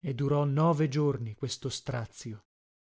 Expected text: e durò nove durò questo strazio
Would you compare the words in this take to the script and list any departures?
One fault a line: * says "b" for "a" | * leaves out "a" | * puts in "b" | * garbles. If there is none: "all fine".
* says "giorni" for "durò"